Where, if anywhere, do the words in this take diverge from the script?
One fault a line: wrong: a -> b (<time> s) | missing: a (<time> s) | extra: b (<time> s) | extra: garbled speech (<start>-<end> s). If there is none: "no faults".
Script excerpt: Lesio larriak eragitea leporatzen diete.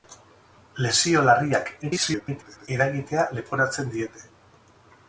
extra: garbled speech (1.8-2.7 s)